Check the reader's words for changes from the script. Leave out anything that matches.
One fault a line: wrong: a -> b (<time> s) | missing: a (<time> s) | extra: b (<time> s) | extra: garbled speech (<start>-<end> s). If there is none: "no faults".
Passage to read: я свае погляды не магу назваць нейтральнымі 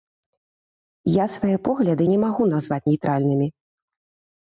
no faults